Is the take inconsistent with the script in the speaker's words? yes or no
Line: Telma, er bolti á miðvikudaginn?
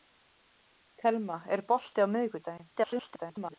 yes